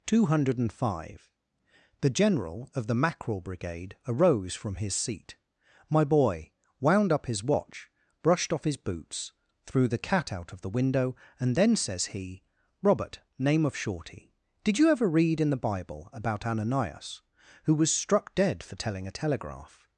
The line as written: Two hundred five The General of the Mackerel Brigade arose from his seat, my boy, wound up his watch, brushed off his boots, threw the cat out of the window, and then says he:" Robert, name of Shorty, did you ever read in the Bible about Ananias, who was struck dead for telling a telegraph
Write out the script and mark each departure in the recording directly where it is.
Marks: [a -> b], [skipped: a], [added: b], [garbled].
Two hundred five The General of the Mackerel Brigade arose from his seat, my boy, wound up his watch, brushed off his boots, threw the cat out of the window, and then says he:" Robert, name of Shorty, did you ever read in the Bible about Ananias, who was struck dead for telling a telegraph